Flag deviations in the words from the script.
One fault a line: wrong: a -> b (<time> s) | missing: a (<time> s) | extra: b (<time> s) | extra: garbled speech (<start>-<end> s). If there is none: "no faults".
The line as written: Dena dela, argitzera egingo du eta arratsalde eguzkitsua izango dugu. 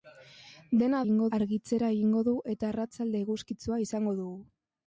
wrong: dela -> egingo (1.0 s)